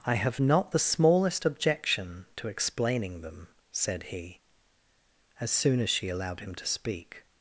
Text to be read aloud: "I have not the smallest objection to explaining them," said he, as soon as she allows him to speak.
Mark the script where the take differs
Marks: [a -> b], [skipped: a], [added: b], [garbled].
"I have not the smallest objection to explaining them," said he, as soon as she [allows -> allowed] him to speak.